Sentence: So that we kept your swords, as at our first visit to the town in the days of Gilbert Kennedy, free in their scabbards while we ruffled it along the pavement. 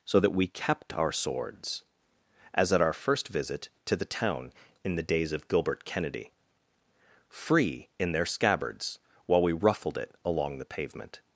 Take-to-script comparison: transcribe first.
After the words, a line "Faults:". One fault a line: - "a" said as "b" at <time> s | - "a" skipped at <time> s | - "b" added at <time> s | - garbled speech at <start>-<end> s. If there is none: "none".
So that we kept our swords, as at our first visit to the town in the days of Gilbert Kennedy, free in their scabbards while we ruffled it along the pavement.
Faults:
- "your" said as "our" at 0.9 s